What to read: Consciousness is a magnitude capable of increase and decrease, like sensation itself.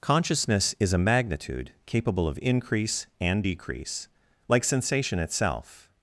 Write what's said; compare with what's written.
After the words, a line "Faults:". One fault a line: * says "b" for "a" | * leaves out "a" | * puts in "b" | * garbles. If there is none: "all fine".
Consciousness is a magnitude capable of increase and decrease, like sensation itself.
Faults:
all fine